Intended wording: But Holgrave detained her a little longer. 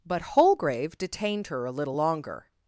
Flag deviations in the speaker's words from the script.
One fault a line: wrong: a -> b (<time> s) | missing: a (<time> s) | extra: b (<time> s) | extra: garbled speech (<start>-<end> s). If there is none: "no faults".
no faults